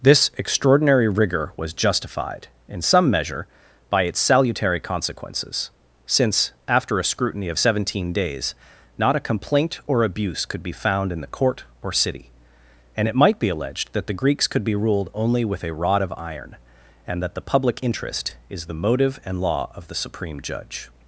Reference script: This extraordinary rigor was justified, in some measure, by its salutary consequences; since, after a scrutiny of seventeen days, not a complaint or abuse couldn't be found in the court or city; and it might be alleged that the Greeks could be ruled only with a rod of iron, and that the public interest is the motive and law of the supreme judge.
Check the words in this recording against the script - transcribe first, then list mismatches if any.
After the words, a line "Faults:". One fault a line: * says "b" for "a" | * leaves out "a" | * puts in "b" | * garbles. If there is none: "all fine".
This extraordinary rigor was justified, in some measure, by its salutary consequences; since, after a scrutiny of seventeen days, not a complaint or abuse could be found in the court or city; and it might be alleged that the Greeks could be ruled only with a rod of iron, and that the public interest is the motive and law of the supreme judge.
Faults:
* says "could" for "couldn't"